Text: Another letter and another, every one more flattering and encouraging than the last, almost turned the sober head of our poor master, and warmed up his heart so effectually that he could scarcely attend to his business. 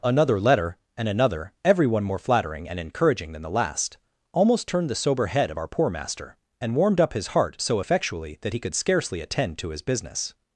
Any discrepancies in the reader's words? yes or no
no